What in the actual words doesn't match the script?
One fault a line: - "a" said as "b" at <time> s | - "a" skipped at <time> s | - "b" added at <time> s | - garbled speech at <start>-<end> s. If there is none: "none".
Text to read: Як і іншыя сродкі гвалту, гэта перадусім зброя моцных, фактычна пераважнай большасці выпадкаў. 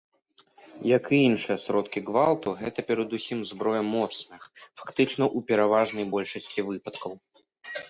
- "ў" added at 5.4 s